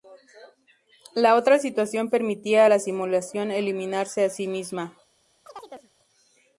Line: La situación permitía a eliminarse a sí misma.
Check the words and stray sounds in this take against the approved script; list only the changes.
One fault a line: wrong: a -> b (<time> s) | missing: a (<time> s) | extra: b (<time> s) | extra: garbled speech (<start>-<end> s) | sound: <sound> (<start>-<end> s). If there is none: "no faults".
extra: otra (1.4 s)
extra: la simulación (2.7 s)
sound: chirp (5.5-5.9 s)